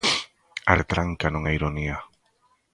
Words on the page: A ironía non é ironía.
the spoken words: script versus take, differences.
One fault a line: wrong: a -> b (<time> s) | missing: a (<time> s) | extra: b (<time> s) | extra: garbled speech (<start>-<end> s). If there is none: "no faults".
wrong: ironía -> retranca (0.8 s)